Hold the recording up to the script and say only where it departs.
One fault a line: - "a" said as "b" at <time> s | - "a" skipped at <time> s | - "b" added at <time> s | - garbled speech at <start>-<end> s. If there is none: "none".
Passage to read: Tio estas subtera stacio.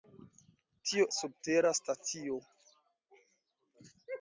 - "estas" skipped at 1.1 s